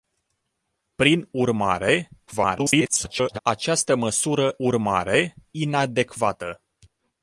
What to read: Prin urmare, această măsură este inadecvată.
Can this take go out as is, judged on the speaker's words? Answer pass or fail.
fail